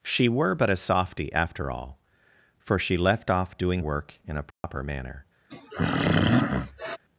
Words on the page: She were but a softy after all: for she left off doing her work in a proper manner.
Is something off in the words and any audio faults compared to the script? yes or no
yes